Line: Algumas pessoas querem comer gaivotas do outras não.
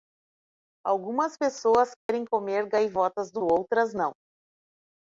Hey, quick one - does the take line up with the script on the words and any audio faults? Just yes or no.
no